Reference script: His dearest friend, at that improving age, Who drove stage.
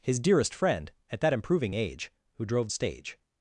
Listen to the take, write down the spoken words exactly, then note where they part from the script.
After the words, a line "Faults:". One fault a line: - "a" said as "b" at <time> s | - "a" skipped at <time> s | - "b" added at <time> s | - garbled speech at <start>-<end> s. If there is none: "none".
His dearest friend, at that improving age, Who drove stage.
Faults:
none